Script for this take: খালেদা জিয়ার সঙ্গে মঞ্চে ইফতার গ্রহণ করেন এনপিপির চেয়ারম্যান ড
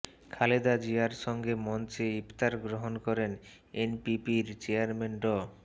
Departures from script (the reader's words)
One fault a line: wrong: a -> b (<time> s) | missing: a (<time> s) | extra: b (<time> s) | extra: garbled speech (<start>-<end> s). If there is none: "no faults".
no faults